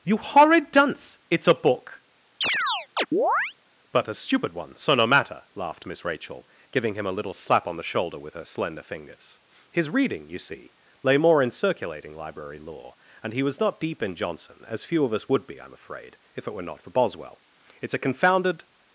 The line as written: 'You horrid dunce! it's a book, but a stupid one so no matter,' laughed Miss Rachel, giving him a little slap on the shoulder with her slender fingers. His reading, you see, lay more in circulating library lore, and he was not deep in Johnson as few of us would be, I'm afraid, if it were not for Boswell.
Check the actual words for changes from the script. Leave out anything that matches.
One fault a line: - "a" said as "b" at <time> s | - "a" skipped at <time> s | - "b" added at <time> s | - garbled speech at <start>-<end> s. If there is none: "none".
- "It's a confounded" added at 17.8 s